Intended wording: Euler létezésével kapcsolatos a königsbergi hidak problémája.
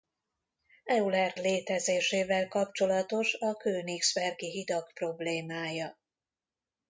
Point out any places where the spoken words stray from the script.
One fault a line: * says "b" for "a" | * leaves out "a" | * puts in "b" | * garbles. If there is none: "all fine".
all fine